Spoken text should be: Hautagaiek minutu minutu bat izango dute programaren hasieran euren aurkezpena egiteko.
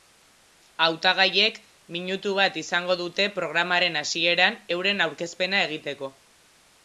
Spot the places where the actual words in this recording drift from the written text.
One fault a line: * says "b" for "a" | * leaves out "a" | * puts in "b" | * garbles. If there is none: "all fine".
* leaves out "minutu"